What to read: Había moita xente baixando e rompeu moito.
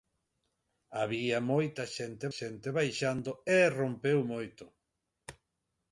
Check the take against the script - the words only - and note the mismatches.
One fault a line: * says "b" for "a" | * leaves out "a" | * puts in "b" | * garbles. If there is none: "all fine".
* puts in "xente"